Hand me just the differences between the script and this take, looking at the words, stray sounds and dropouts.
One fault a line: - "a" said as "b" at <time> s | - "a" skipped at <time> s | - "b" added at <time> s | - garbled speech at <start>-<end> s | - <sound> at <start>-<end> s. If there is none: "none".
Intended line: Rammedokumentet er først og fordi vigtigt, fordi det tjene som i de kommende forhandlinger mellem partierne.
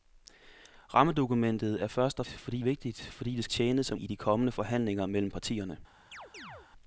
- chirp at 6.1-6.7 s